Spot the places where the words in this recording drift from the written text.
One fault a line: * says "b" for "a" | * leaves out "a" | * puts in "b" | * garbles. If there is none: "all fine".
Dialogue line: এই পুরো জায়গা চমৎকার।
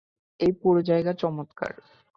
all fine